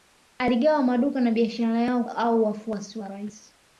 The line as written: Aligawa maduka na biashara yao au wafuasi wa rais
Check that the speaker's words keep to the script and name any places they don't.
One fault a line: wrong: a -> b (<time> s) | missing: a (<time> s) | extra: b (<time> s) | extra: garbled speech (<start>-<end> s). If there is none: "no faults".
no faults